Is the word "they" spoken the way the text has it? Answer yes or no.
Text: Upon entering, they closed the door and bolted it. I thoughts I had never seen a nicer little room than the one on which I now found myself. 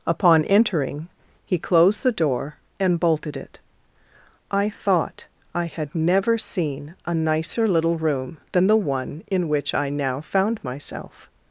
no